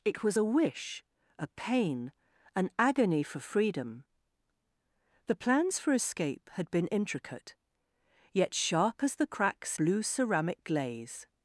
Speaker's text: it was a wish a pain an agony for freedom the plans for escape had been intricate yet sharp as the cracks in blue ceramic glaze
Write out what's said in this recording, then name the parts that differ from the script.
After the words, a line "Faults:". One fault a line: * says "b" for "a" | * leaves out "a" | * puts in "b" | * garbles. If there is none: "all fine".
it was a wish a pain an agony for freedom the plans for escape had been intricate yet sharp as the cracks blue ceramic glaze
Faults:
* leaves out "in"